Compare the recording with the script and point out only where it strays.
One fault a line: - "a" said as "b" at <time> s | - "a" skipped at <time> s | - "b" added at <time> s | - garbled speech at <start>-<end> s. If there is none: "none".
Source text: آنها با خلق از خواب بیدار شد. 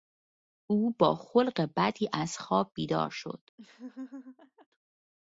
- "آنها" said as "او" at 0.7 s
- "بدی" added at 1.8 s